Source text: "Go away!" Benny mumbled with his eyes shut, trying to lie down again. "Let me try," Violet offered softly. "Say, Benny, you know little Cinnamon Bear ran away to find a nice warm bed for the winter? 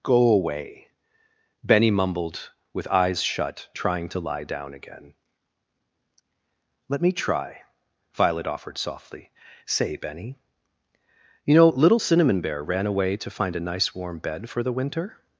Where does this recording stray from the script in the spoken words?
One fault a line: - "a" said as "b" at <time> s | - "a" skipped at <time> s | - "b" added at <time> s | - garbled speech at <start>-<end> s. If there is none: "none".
- "his" skipped at 2.9 s